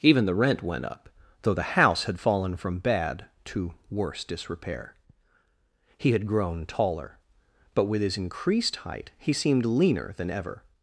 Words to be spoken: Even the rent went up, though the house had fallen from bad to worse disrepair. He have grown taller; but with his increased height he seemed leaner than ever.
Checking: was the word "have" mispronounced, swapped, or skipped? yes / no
yes